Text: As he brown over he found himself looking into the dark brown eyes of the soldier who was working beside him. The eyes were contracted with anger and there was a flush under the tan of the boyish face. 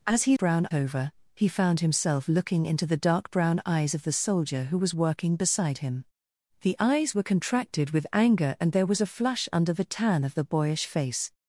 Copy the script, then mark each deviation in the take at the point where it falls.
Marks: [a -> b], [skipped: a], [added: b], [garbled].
As he brown over he found himself looking into the dark brown eyes of the soldier who was working beside him. The eyes were contracted with anger and there was a flush under the tan of the boyish face.